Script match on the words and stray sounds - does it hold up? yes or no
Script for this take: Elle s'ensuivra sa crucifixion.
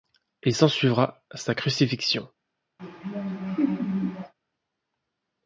no